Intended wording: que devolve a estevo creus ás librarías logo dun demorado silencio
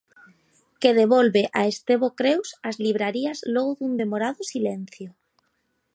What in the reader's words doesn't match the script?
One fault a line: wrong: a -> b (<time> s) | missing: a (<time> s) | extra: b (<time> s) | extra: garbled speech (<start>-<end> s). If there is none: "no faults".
no faults